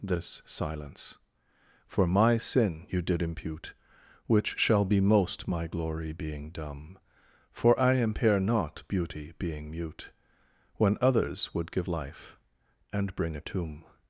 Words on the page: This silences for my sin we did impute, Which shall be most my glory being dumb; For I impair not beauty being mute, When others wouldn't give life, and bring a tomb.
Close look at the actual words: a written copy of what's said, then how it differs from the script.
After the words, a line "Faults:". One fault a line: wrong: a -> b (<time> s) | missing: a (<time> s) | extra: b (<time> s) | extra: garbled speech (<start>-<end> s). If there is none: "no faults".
This silence for my sin you did impute, Which shall be most my glory being dumb; For I impair not beauty being mute, When others would give life, and bring a tomb.
Faults:
wrong: silences -> silence (0.5 s)
wrong: we -> you (2.9 s)
wrong: wouldn't -> would (11.5 s)